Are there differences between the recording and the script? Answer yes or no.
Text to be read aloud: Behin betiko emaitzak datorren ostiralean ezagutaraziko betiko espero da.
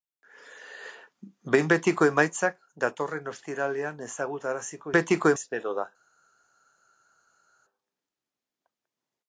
no